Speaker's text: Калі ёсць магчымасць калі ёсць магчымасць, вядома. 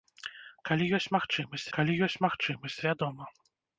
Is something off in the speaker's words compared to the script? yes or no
no